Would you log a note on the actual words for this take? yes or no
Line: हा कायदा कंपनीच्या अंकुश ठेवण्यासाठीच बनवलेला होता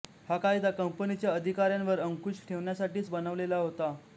yes